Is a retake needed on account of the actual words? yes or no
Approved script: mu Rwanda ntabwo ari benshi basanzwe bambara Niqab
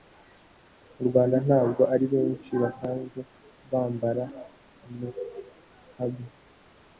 no